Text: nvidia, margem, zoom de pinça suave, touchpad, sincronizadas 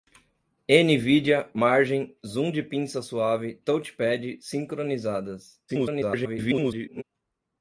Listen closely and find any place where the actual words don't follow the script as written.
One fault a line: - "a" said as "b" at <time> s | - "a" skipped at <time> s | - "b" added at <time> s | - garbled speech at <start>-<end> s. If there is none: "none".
- garbled speech at 5.7-7.0 s